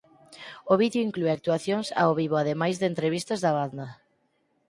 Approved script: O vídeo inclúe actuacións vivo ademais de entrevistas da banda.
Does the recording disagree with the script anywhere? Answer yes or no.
yes